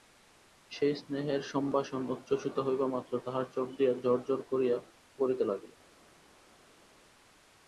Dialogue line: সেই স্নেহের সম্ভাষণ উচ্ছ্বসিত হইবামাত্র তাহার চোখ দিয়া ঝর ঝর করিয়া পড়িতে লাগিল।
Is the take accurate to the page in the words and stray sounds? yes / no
yes